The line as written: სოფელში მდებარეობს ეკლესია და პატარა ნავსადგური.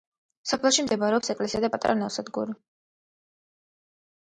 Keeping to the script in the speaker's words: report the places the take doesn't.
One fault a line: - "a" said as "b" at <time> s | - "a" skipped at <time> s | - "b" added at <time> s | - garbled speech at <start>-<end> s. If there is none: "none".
none